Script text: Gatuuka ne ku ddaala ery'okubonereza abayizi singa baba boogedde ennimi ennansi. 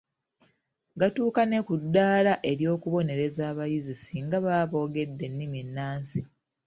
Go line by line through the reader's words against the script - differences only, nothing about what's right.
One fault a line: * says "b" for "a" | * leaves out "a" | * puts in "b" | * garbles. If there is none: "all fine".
all fine